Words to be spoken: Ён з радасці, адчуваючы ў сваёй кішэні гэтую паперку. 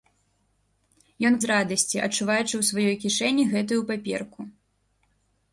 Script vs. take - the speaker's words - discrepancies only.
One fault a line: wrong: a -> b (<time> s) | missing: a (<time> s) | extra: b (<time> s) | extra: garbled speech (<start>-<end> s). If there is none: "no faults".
no faults